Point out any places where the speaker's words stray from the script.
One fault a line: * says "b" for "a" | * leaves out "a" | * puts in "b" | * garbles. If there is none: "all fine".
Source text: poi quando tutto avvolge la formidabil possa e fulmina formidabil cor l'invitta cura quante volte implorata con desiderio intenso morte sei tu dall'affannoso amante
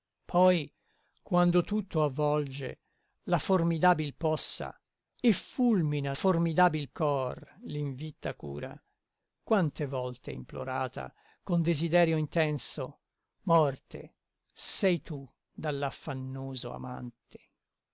all fine